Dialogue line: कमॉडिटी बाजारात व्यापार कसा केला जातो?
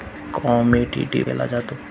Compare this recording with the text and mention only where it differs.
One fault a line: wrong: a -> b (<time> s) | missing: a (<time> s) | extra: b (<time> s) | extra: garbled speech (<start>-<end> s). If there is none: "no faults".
missing: बाजारात व्यापार कसा (1.2 s)